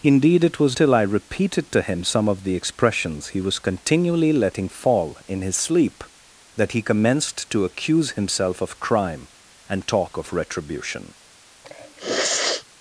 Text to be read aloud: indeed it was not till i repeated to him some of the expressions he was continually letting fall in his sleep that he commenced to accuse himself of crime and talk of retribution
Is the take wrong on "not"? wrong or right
wrong